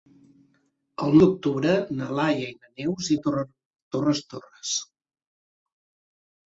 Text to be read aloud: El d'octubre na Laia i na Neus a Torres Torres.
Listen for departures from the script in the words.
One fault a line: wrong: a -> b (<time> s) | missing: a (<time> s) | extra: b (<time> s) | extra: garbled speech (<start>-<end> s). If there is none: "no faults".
no faults